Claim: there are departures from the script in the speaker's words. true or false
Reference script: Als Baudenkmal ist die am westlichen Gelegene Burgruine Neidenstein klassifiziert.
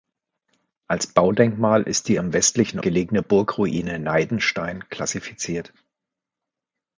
false